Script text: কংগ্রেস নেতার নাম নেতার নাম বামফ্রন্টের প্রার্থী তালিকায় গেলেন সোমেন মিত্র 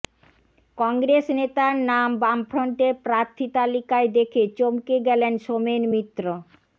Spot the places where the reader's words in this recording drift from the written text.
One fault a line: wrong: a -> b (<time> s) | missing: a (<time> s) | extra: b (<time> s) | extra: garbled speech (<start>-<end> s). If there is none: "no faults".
missing: নেতার নাম (2.1 s)
extra: দেখে চমকে (4.2 s)